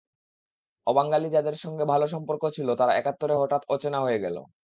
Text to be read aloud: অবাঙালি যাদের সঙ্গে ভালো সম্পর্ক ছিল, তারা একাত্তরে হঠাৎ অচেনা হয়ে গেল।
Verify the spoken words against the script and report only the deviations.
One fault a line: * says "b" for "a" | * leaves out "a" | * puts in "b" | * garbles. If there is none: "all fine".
all fine